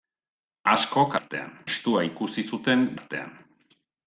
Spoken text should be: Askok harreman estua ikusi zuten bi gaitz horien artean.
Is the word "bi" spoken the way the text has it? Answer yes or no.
no